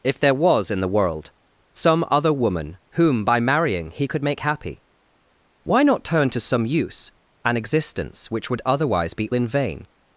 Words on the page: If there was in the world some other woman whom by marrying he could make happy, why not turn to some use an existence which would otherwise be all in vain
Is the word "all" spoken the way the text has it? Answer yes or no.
no